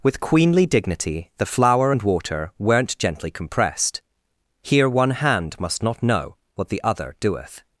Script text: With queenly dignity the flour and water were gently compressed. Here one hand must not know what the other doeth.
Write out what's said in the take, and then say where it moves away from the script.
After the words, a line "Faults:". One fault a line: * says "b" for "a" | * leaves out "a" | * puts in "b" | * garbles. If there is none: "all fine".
With queenly dignity the flour and water weren't gently compressed. Here one hand must not know what the other doeth.
Faults:
* says "weren't" for "were"